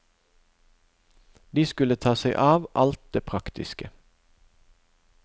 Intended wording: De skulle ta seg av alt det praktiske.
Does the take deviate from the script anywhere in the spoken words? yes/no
no